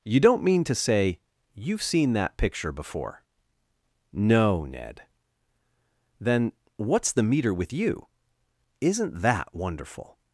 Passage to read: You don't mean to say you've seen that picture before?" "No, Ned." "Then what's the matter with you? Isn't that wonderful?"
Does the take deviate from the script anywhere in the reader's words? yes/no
yes